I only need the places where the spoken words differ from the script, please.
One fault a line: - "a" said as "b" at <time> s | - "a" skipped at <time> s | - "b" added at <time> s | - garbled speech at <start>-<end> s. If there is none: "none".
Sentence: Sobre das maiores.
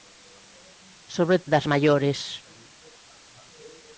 none